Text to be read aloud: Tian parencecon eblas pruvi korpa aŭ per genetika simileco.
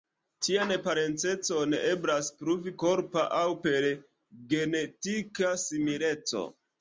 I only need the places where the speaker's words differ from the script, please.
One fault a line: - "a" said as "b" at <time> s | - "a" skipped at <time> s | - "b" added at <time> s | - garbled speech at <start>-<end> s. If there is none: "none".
none